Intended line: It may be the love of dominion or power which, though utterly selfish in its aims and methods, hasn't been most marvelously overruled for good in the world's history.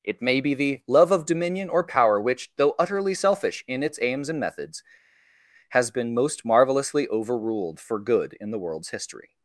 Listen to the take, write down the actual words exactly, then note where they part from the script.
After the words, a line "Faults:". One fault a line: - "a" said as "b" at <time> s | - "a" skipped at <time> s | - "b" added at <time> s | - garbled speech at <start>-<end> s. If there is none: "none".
It may be the love of dominion or power which, though utterly selfish in its aims and methods, has been most marvelously overruled for good in the world's history.
Faults:
- "hasn't" said as "has" at 5.7 s